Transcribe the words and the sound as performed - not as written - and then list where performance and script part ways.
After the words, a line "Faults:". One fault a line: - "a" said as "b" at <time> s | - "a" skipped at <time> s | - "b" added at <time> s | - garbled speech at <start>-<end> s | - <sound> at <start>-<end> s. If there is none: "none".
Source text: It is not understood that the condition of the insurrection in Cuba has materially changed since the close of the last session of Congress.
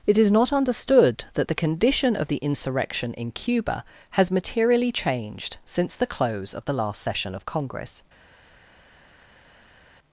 It is not understood that the condition of the insurrection in Cuba has materially changed since the close of the last session of Congress.
Faults:
none